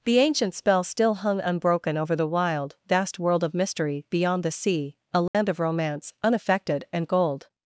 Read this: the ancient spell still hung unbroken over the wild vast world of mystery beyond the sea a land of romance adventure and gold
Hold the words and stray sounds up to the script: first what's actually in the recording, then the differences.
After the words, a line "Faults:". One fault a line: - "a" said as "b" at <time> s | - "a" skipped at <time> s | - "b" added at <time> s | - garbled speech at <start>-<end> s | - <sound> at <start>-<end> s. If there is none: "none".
the ancient spell still hung unbroken over the wild vast world of mystery beyond the sea a land of romance unaffected and gold
Faults:
- dropout at 5.3-5.3 s
- "adventure" said as "unaffected" at 6.2 s